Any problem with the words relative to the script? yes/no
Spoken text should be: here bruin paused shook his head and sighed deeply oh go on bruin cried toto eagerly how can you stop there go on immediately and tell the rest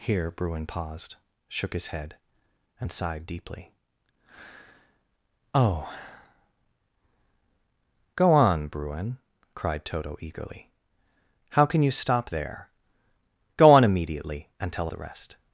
no